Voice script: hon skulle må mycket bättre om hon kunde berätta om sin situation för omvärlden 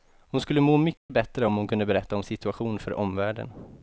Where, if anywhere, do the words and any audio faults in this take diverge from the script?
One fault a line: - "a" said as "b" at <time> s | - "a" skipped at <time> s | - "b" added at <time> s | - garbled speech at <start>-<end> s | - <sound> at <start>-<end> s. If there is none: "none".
- dropout at 1.0-1.1 s
- "sin" skipped at 2.2 s